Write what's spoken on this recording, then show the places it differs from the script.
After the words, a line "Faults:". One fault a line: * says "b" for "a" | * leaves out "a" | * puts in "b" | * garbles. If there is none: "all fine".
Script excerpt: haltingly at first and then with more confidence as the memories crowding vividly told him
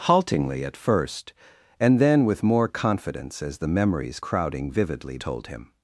haltingly at first and then with more confidence as the memories crowding vividly told him
Faults:
all fine